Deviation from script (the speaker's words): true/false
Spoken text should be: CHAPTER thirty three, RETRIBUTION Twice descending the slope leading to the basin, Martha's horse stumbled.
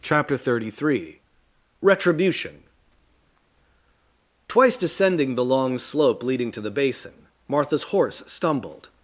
true